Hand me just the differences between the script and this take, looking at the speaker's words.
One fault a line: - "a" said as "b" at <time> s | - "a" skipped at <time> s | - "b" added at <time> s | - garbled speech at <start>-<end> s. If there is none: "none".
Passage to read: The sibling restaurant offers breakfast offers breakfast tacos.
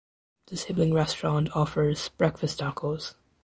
- "offers breakfast" skipped at 2.6 s